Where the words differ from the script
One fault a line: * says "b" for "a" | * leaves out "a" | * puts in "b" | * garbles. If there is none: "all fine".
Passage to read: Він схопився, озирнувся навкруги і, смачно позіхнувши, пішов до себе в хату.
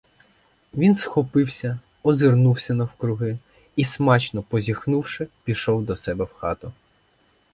all fine